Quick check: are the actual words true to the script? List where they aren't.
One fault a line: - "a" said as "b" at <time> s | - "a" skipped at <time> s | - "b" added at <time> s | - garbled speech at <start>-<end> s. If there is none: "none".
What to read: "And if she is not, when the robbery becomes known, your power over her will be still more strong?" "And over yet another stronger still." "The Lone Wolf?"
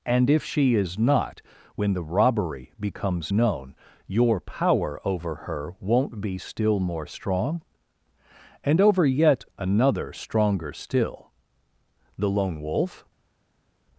- "will" said as "won't" at 5.8 s